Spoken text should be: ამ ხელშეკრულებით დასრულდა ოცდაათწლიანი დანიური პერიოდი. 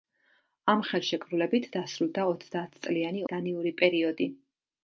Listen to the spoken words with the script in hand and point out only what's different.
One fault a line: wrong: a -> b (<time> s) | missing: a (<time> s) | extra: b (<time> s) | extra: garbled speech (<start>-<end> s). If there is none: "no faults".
no faults